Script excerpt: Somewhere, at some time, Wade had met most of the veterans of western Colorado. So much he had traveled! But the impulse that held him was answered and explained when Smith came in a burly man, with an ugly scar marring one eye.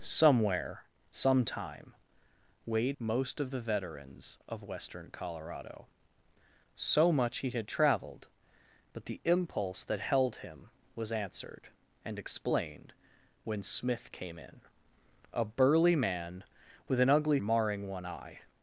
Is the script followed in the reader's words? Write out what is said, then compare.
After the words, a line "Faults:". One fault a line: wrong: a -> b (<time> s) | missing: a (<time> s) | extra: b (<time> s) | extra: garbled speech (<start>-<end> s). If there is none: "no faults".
Somewhere, some time, Wade most of the veterans of western Colorado. So much he had traveled! But the impulse that held him was answered and explained when Smith came in a burly man, with an ugly marring one eye.
Faults:
missing: at (0.8 s)
missing: had met (3.0 s)
missing: scar (17.4 s)